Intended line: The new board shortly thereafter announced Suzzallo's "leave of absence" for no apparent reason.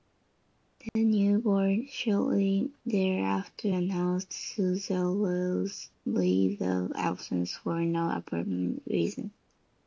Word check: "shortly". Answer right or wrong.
right